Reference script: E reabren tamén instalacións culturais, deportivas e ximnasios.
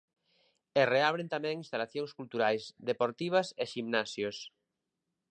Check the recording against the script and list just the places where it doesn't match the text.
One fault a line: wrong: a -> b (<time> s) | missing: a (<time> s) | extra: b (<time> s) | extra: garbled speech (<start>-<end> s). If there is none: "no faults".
no faults